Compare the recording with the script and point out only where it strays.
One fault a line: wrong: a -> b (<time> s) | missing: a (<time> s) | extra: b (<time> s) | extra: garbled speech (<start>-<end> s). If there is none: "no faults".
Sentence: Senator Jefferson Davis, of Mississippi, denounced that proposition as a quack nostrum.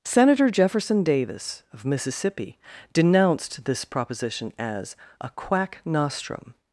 wrong: that -> this (3.6 s)